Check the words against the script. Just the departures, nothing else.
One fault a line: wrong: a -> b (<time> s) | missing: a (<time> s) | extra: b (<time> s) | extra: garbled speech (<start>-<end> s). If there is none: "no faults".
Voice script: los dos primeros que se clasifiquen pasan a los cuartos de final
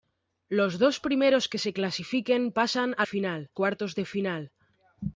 wrong: los -> final (3.0 s)